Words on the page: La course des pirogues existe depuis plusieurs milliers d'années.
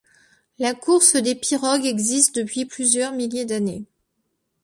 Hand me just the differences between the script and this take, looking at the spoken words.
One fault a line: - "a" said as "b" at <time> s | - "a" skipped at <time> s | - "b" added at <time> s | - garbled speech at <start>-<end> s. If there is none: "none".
none